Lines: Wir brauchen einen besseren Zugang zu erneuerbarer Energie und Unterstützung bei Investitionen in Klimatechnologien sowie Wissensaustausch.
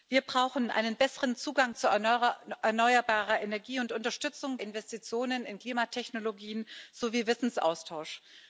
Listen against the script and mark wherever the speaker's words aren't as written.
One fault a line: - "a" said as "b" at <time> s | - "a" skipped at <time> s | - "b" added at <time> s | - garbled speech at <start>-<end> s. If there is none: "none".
- "bei" skipped at 4.6 s